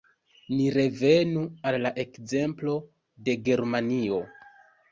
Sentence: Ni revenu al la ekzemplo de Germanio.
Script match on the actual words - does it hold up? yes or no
yes